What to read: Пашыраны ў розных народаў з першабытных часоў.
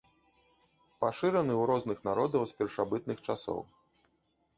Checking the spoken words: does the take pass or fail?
pass